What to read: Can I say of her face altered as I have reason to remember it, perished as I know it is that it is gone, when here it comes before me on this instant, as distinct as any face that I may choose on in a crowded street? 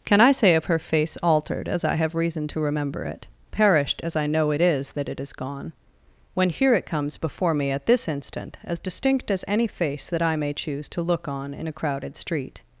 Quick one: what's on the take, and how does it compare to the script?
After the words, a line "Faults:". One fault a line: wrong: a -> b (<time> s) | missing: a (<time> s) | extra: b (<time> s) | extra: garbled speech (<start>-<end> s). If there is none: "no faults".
Can I say of her face altered as I have reason to remember it, perished as I know it is that it is gone, when here it comes before me at this instant, as distinct as any face that I may choose to look on in a crowded street?
Faults:
wrong: on -> at (7.7 s)
extra: to look (10.9 s)